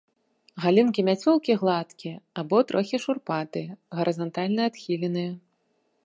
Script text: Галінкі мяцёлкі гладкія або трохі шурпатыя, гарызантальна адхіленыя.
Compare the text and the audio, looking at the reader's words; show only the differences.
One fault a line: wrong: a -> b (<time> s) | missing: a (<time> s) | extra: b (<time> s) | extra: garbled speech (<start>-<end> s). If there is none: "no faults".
no faults